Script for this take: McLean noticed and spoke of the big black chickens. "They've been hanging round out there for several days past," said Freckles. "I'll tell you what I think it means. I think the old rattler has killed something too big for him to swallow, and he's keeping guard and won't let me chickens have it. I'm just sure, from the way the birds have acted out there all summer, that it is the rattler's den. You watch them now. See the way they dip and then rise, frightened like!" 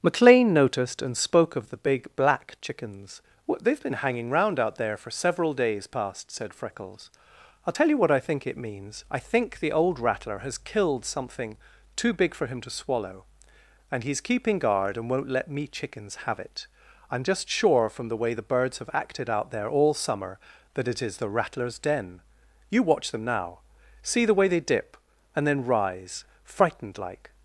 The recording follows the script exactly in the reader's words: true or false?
false